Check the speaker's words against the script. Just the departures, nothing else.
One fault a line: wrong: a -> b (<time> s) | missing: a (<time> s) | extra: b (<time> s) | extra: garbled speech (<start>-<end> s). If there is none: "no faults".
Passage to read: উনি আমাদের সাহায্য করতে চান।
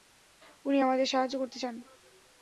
no faults